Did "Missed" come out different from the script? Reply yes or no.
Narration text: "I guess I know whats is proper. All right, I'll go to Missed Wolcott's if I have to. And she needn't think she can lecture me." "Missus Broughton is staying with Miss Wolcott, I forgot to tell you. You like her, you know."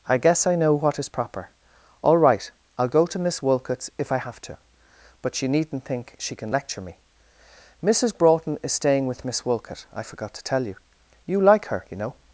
yes